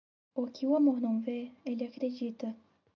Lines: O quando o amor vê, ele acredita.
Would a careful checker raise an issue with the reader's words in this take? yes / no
yes